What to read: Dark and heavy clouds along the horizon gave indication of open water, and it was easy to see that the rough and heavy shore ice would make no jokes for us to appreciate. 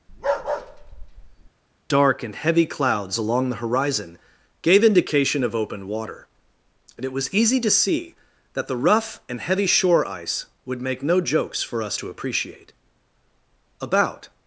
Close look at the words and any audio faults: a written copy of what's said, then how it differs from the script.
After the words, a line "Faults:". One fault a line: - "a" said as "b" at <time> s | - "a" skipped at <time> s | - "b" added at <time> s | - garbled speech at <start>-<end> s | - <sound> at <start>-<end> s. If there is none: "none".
Dark and heavy clouds along the horizon gave indication of open water, and it was easy to see that the rough and heavy shore ice would make no jokes for us to appreciate. About
Faults:
- bark at 0.1-1.5 s
- "About" added at 13.8 s